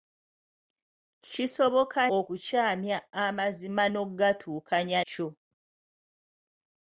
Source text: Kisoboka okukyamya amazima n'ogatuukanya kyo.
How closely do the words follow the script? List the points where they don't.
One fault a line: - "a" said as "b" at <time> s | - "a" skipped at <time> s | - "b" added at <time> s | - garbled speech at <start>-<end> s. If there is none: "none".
none